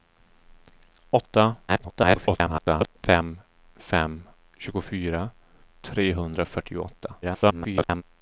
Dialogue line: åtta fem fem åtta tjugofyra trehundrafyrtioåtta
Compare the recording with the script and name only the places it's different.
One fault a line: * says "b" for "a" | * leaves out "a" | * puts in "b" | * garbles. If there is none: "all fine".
* garbles
* leaves out "åtta"
* garbles